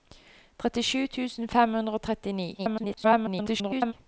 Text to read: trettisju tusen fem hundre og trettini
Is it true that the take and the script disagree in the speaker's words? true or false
true